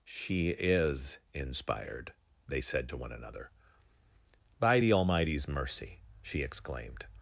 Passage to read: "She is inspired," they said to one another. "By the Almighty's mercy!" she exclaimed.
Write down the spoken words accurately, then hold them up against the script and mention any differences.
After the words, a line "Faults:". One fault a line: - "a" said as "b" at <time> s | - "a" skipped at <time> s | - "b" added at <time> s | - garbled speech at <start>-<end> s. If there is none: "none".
"She is inspired," they said to one another. "By the Almighty's mercy!" she exclaimed.
Faults:
none